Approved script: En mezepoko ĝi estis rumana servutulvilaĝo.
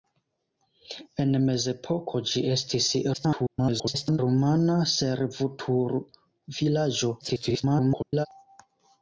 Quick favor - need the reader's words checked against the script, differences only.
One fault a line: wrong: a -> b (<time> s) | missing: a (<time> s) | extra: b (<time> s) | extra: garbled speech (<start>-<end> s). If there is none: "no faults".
extra: garbled speech (3.1-4.2 s)
extra: garbled speech (7.2-8.3 s)